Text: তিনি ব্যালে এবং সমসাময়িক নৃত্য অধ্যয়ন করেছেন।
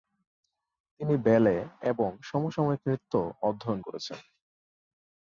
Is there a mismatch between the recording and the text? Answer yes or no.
no